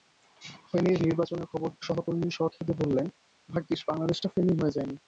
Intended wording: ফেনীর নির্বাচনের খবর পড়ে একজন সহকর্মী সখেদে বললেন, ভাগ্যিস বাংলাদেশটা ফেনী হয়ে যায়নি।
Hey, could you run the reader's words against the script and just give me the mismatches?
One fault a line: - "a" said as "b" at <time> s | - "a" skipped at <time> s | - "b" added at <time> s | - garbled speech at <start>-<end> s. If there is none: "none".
- "পড়ে একজন" skipped at 1.7 s